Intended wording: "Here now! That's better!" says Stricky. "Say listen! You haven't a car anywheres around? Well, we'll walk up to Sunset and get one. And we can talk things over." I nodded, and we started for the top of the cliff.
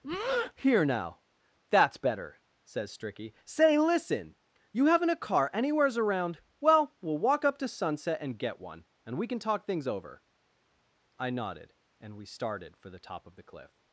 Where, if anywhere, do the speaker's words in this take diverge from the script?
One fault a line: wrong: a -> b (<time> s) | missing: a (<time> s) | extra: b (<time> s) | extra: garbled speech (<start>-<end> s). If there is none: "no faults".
no faults